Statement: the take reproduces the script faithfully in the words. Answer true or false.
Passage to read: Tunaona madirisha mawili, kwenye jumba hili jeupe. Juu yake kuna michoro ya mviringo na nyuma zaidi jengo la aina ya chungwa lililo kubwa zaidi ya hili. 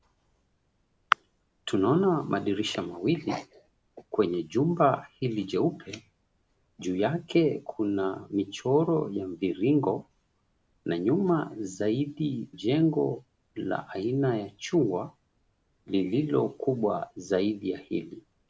true